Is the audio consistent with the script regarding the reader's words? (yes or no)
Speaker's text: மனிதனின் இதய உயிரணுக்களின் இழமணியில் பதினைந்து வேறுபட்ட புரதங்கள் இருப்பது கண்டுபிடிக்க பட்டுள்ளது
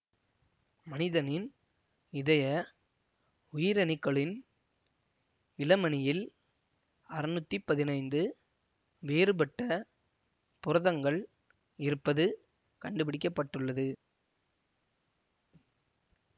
no